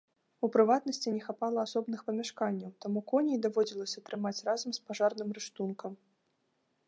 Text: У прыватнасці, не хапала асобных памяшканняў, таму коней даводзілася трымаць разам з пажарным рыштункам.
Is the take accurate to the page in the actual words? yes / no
yes